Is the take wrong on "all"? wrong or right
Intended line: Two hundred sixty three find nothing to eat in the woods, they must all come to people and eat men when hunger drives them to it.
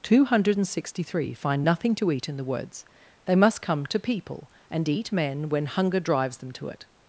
wrong